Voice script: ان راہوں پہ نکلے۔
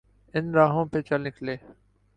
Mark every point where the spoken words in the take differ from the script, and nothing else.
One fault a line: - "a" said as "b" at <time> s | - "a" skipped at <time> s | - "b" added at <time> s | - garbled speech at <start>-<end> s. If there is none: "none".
- "چل" added at 1.0 s